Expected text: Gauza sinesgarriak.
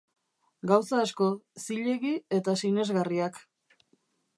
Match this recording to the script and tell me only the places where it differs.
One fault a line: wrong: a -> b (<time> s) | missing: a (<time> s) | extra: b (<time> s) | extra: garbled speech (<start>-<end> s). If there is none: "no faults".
extra: asko zilegi eta (1.0 s)